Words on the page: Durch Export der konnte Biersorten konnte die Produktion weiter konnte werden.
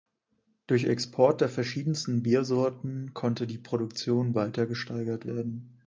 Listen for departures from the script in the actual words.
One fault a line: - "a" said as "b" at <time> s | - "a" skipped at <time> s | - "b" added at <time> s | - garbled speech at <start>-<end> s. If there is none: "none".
- "konnte" said as "verschiedensten" at 1.5 s
- "konnte" said as "gesteigert" at 4.7 s